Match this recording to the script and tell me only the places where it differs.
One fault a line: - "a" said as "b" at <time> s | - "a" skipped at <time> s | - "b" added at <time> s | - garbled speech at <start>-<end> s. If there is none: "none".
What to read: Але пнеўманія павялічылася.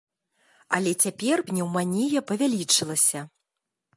- "цяпер" added at 1.0 s